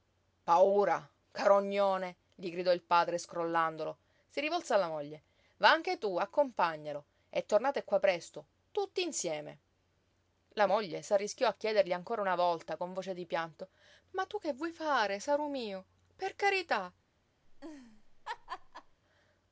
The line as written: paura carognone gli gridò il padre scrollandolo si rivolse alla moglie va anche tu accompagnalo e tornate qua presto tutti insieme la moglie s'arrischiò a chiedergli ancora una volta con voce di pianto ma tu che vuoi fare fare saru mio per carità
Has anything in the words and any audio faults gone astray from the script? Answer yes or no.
yes